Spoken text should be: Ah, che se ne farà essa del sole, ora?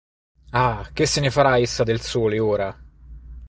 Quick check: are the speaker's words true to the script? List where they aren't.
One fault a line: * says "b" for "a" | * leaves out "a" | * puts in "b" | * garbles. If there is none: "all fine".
all fine